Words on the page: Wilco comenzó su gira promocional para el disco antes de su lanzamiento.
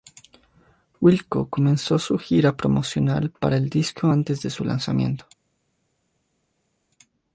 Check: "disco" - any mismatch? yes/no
no